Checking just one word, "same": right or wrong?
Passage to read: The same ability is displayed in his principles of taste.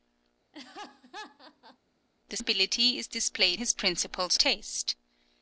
wrong